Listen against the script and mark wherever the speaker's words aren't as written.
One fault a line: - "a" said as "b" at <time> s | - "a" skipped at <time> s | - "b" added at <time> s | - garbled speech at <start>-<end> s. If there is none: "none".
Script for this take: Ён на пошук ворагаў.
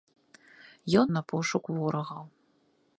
none